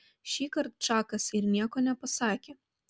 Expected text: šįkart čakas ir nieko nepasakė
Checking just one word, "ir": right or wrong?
right